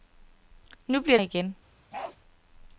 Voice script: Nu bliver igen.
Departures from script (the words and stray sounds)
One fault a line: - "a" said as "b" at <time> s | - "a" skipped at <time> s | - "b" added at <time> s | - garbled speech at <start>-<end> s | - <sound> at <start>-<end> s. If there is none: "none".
- bark at 1.9-2.2 s